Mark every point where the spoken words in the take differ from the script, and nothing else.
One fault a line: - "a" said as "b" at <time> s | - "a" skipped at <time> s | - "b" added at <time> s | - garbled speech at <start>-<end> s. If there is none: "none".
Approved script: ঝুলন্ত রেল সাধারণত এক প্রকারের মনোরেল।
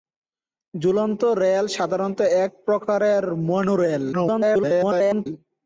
- garbled speech at 4.1-5.3 s